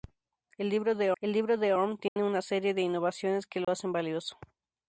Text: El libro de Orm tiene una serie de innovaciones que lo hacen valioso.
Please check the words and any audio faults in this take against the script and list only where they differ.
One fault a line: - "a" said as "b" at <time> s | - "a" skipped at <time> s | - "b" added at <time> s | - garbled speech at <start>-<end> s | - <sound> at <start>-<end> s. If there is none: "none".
- "el libro de" added at 1.2 s
- dropout at 2.1-2.2 s
- dropout at 3.6-3.7 s